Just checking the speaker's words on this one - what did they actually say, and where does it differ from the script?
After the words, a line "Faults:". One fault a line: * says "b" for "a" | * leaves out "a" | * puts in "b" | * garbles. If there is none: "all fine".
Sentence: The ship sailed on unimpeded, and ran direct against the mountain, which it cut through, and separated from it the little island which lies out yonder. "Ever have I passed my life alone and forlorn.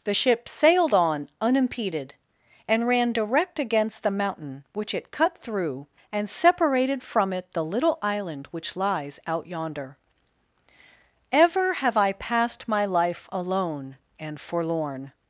The ship sailed on unimpeded, and ran direct against the mountain, which it cut through, and separated from it the little island which lies out yonder. "Ever have I passed my life alone and forlorn.
Faults:
all fine